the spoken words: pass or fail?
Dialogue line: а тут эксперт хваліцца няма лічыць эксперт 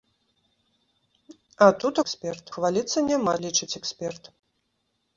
pass